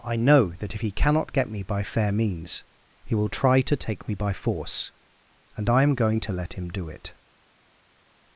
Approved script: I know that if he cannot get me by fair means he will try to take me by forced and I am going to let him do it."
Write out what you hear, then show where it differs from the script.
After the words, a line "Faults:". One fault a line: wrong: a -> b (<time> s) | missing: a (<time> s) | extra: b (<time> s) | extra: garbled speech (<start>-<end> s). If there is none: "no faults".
I know that if he cannot get me by fair means he will try to take me by force and I am going to let him do it."
Faults:
wrong: forced -> force (4.3 s)